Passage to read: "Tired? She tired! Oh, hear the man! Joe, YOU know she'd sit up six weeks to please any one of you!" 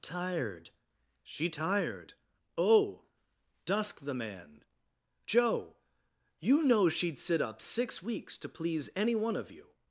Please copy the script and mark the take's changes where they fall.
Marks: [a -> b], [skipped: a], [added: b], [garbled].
"Tired? She tired! Oh, [hear -> dusk] the man! Joe, YOU know she'd sit up six weeks to please any one of you!"